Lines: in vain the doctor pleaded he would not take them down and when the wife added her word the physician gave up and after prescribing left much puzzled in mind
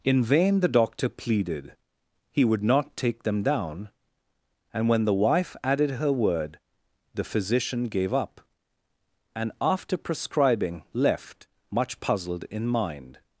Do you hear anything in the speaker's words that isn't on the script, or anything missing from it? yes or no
no